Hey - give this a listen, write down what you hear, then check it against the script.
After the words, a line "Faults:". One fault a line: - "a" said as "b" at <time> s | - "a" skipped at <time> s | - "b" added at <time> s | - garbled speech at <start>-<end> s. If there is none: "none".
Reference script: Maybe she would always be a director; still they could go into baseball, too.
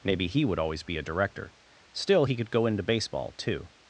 Maybe he would always be a director; still he could go into baseball, too.
Faults:
- "she" said as "he" at 0.3 s
- "they" said as "he" at 2.2 s